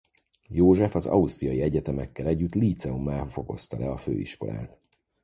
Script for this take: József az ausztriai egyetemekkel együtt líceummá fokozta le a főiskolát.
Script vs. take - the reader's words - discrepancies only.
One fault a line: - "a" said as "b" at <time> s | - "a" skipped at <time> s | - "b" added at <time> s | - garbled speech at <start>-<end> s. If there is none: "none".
none